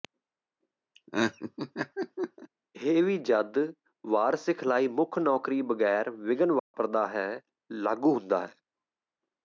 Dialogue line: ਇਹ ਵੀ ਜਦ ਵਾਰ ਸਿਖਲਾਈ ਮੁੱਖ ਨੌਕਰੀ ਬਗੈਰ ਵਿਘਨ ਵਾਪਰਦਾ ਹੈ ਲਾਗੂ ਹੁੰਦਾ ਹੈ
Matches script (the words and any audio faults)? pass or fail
fail